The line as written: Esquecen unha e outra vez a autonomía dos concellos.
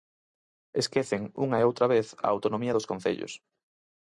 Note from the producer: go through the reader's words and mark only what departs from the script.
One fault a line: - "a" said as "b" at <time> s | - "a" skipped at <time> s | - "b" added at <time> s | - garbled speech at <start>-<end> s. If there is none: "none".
none